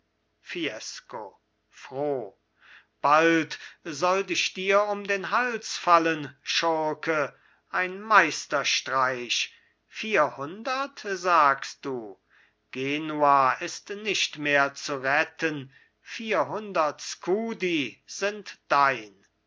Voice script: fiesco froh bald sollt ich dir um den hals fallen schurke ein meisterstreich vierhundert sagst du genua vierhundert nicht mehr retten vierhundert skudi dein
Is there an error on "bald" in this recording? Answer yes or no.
no